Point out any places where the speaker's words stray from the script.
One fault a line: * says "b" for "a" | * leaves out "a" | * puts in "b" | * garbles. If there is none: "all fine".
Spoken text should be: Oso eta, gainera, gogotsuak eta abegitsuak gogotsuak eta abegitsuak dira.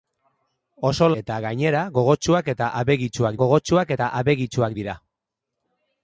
all fine